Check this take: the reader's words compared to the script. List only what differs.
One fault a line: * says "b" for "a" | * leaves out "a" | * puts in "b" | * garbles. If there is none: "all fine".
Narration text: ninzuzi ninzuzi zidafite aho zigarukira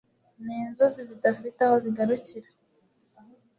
* leaves out "ninzuzi"